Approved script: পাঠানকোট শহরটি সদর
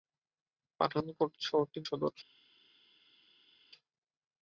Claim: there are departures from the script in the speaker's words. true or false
false